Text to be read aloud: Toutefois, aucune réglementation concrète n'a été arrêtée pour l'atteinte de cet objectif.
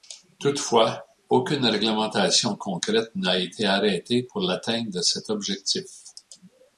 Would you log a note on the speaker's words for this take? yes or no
no